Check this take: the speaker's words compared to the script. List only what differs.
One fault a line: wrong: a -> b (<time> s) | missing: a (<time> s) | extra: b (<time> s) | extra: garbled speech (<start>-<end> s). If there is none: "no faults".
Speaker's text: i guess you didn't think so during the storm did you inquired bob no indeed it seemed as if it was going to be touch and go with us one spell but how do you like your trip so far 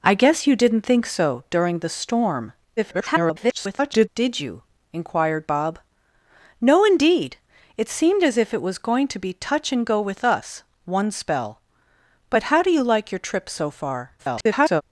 extra: garbled speech (2.8-4.1 s)
extra: garbled speech (14.2-14.8 s)